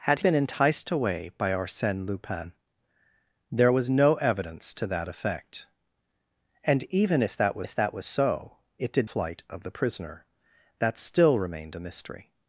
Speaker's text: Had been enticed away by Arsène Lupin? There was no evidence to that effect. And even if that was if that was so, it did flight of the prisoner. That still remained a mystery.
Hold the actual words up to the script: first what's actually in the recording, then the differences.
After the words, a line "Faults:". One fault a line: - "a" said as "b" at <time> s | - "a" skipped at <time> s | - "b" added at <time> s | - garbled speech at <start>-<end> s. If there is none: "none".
Had been enticed away by Arsène Lupin? There was no evidence to that effect. And even if that was if that was so, it did flight of the prisoner. That still remained a mystery.
Faults:
none